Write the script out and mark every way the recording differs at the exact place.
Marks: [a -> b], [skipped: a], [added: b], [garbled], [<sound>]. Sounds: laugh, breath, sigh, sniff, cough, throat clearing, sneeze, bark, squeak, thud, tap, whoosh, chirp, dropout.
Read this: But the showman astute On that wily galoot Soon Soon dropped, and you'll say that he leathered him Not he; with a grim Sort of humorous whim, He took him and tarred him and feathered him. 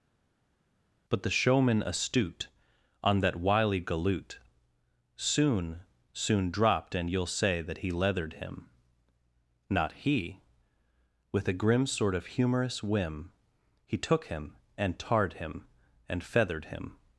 But the showman astute On that wily galoot Soon Soon dropped, and you'll say that he leathered him Not he; with a grim Sort of humorous whim, He took him and tarred him and feathered him.